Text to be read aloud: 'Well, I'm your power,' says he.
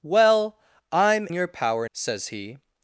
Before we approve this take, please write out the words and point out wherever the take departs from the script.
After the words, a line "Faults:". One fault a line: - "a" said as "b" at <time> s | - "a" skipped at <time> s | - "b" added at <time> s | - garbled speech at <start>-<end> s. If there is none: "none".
'Well, I'm your power,' says he.
Faults:
none